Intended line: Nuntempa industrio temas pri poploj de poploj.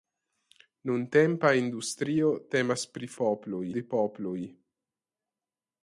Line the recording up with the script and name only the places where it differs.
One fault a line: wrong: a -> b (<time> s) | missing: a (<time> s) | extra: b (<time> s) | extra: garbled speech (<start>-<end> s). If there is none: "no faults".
no faults